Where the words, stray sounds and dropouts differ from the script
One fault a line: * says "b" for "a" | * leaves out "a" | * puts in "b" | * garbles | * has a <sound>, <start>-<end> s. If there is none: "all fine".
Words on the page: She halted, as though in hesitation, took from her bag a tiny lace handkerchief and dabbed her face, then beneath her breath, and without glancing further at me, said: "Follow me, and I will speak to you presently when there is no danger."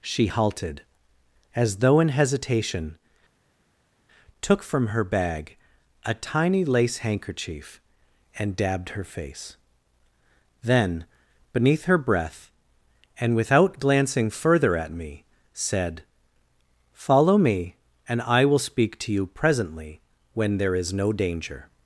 all fine